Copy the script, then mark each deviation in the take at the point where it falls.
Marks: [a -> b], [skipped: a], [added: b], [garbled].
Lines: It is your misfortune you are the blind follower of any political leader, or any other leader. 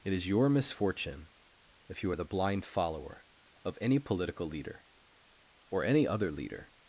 It is your misfortune [added: if] you are the blind follower of any political leader, or any other leader.